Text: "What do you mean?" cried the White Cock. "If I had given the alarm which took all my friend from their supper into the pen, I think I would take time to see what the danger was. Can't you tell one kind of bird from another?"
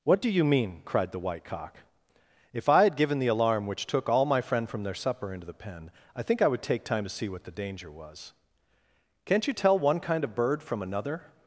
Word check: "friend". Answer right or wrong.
right